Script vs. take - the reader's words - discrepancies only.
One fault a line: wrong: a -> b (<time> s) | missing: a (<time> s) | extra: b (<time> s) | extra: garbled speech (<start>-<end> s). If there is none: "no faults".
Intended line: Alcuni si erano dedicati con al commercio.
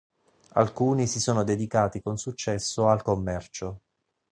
wrong: erano -> sono (1.2 s)
extra: successo (2.2 s)